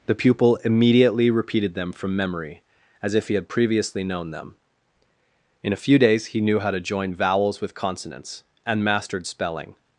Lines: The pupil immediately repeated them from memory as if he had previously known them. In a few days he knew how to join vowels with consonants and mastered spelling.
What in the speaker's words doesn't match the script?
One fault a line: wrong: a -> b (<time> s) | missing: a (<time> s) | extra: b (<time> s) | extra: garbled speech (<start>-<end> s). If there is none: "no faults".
no faults